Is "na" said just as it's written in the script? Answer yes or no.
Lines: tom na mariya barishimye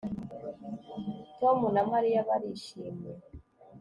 yes